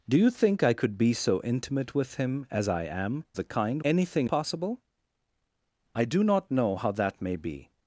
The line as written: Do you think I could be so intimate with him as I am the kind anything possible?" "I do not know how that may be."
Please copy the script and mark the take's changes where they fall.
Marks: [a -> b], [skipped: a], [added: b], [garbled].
Do you think I could be so intimate with him as I am the kind anything possible?" "I do not know how that may be."